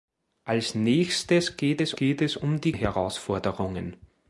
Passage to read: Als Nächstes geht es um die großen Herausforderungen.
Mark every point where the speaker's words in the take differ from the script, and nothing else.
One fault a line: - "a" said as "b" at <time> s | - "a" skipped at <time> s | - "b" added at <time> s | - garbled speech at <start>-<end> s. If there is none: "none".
- "geht es" added at 2.0 s
- "großen" skipped at 2.7 s